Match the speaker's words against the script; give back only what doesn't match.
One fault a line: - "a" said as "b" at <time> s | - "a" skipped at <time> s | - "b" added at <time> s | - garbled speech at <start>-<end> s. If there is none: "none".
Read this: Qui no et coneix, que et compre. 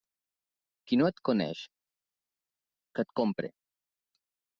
none